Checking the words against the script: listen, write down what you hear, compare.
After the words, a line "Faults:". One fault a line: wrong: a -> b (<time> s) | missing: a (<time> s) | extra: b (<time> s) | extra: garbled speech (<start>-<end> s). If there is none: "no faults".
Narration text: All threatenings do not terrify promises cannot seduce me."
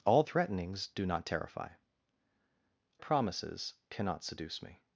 All threatenings do not terrify promises cannot seduce me."
Faults:
no faults